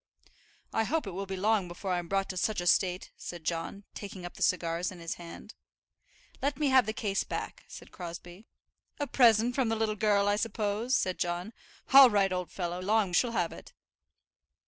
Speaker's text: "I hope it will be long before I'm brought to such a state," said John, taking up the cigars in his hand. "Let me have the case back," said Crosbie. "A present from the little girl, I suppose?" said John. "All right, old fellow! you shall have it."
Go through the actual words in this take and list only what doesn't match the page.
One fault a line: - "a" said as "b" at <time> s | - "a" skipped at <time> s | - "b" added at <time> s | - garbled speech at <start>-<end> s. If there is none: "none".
- "you" said as "long" at 12.8 s